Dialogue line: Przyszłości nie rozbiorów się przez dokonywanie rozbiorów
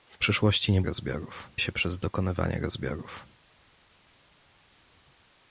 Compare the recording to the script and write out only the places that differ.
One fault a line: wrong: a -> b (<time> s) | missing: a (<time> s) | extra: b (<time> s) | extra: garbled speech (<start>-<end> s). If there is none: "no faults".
no faults